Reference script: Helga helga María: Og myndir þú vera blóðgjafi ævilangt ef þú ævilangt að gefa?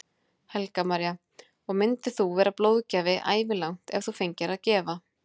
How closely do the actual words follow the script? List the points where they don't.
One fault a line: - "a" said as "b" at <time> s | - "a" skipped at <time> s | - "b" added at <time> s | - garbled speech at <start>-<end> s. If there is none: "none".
- "helga" skipped at 0.8 s
- "ævilangt" said as "fengir" at 4.2 s